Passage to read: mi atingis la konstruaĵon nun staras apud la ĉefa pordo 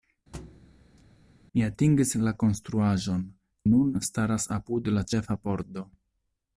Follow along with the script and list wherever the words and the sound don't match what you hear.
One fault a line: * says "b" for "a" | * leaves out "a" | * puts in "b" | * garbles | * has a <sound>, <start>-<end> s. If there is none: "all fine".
* has a thud, 0.3-1.0 s